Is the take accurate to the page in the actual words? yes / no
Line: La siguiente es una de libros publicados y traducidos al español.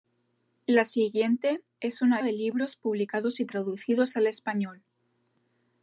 yes